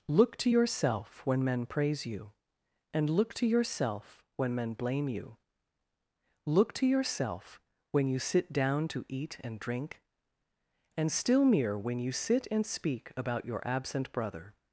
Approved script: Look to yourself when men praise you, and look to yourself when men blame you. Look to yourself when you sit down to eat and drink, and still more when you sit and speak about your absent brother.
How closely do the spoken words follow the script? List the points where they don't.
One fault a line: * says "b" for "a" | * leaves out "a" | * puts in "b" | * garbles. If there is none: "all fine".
* says "mere" for "more"